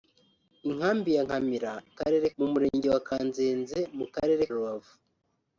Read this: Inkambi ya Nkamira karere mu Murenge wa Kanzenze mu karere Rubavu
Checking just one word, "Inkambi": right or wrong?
right